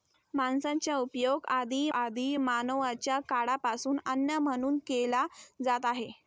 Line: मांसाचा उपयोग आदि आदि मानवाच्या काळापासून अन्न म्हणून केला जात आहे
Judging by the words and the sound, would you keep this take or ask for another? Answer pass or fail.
pass